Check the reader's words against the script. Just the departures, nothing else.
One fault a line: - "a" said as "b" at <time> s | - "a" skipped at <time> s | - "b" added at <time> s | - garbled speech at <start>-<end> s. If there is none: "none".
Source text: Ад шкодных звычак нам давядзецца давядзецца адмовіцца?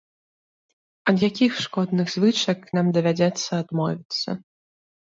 - "якіх" added at 1.3 s
- "давядзецца" skipped at 3.5 s